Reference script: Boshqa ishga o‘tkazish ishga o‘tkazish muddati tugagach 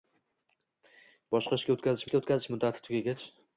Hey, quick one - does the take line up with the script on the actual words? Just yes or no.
yes